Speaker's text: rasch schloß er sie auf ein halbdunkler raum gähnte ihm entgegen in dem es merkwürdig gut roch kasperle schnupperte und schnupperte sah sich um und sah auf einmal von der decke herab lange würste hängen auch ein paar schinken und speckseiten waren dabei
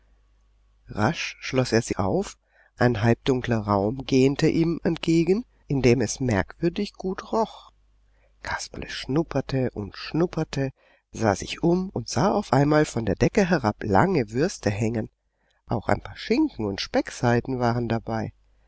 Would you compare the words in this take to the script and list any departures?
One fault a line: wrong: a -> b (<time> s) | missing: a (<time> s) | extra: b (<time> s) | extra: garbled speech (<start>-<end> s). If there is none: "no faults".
no faults